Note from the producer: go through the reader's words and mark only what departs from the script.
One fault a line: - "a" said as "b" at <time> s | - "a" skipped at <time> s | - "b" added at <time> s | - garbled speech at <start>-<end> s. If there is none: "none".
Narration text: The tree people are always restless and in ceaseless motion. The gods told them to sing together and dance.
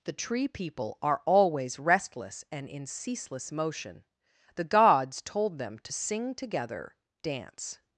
- "and" skipped at 6.9 s